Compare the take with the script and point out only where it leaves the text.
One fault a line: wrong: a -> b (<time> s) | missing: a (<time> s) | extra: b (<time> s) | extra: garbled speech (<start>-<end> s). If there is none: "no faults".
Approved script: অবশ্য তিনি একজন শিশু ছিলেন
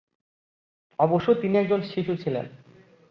no faults